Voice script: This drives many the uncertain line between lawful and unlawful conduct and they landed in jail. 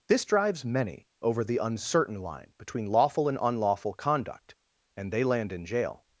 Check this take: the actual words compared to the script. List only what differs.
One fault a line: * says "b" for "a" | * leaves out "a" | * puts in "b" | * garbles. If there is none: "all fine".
* puts in "over"
* says "land" for "landed"